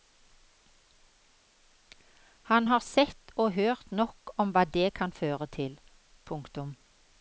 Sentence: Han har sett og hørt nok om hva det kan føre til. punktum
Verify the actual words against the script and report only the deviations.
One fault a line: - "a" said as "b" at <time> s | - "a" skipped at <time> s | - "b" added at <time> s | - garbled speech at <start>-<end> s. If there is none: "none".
none